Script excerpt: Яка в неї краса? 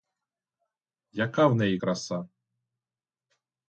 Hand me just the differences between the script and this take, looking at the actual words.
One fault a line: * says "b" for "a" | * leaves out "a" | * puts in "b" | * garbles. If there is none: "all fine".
all fine